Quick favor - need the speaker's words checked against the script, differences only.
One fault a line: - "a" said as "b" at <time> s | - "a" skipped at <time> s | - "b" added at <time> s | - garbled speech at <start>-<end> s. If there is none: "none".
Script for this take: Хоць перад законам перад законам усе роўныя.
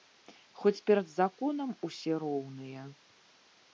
- "перад законам" skipped at 1.8 s